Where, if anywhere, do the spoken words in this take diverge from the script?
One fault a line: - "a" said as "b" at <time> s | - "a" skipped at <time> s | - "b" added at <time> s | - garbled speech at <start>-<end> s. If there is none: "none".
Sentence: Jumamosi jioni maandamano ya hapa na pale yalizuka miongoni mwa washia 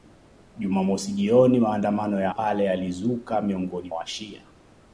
- "hapa na" skipped at 2.3 s
- "mwa" skipped at 3.9 s